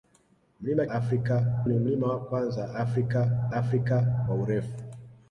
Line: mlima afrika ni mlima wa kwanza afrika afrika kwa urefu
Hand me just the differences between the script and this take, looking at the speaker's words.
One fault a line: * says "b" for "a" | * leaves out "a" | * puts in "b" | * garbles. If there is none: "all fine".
all fine